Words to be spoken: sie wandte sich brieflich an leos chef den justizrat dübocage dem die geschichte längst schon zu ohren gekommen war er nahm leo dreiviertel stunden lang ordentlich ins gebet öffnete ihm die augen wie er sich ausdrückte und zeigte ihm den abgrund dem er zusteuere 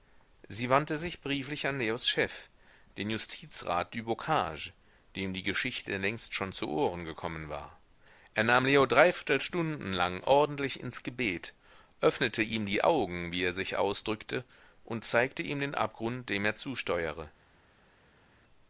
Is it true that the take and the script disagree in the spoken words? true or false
false